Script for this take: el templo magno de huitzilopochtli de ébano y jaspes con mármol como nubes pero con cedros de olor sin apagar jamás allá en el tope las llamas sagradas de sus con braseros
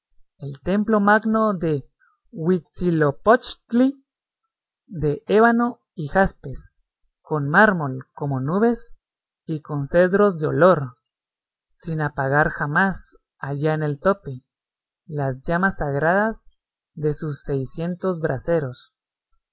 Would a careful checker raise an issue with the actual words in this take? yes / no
yes